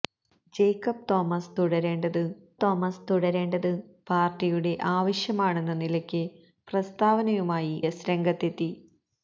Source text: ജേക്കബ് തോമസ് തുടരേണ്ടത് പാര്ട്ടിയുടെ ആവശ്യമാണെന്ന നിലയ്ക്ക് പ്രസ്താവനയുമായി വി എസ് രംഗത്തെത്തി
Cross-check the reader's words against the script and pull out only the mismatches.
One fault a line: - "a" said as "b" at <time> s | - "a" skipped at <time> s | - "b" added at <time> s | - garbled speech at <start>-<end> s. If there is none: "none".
- "തോമസ് തുടരേണ്ടത്" added at 2.6 s
- "വി" skipped at 7.7 s